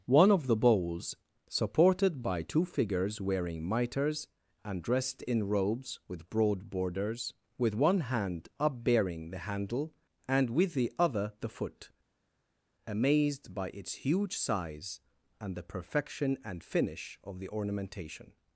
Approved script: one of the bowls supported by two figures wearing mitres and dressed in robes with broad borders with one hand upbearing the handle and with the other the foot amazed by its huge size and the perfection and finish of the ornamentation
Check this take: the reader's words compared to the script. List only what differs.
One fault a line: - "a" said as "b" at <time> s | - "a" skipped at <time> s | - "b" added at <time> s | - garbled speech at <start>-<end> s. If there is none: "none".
none